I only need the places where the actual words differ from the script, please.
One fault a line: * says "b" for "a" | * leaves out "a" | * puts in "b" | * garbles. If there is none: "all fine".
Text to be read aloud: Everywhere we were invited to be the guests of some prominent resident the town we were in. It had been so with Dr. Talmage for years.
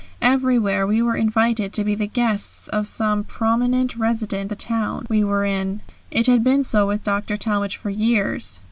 all fine